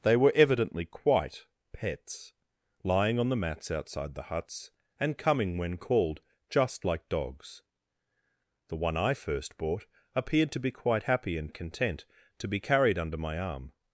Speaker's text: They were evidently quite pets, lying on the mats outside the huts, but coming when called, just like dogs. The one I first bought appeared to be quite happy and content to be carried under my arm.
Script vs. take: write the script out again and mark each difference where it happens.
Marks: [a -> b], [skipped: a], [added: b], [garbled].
They were evidently quite pets, lying on the mats outside the huts, [but -> and] coming when called, just like dogs. The one I first bought appeared to be quite happy and content to be carried under my arm.